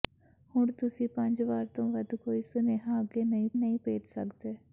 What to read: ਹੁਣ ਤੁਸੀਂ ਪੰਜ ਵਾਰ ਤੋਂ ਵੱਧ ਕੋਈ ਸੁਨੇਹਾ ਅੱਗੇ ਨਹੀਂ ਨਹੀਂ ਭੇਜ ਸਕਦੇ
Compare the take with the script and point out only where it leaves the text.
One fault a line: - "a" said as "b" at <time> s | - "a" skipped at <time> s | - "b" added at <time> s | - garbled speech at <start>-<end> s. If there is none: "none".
none